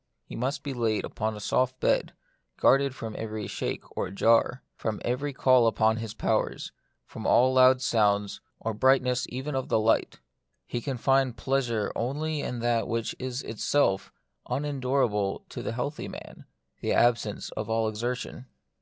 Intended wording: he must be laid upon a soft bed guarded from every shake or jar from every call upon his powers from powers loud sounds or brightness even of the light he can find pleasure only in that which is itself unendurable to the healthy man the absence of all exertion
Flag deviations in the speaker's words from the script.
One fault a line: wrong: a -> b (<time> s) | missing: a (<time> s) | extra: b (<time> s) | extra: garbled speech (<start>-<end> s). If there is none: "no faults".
wrong: powers -> all (7.3 s)